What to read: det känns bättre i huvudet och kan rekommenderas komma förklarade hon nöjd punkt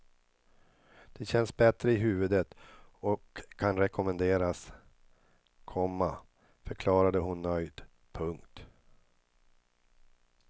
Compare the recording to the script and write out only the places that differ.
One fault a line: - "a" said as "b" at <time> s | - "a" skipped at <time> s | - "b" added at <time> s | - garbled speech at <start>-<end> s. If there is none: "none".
none